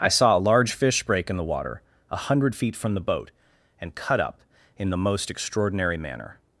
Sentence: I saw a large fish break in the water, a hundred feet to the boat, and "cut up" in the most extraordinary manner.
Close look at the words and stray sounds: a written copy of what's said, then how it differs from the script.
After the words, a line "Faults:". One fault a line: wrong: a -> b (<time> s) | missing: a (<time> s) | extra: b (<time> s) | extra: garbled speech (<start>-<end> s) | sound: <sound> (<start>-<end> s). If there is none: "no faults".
I saw a large fish break in the water, a hundred feet from the boat, and "cut up" in the most extraordinary manner.
Faults:
wrong: to -> from (2.8 s)